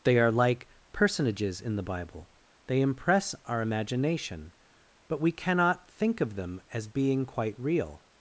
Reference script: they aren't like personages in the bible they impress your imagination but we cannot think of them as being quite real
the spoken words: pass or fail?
fail